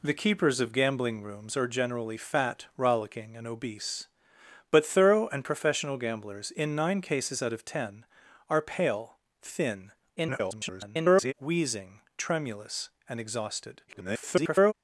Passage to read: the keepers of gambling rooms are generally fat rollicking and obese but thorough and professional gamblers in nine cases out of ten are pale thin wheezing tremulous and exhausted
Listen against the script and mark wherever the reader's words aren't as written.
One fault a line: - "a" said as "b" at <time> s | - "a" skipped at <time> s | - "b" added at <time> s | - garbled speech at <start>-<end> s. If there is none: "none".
- garbled speech at 10.2-11.3 s
- garbled speech at 13.9-14.7 s